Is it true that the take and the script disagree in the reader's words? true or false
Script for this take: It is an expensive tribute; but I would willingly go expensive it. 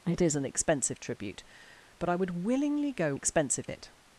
false